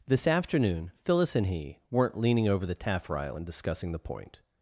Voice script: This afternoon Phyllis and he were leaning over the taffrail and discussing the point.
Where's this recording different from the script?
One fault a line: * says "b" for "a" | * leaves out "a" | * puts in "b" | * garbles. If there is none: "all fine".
* says "weren't" for "were"